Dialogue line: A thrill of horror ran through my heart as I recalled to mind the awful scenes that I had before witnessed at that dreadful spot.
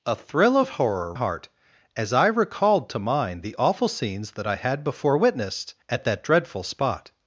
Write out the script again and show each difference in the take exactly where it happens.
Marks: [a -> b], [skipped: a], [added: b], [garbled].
A thrill of horror [skipped: ran through my] heart as I recalled to mind the awful scenes that I had before witnessed at that dreadful spot.